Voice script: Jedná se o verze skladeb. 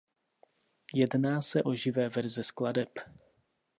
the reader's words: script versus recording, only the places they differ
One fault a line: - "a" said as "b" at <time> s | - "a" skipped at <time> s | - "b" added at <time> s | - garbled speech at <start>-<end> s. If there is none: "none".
- "živé" added at 1.7 s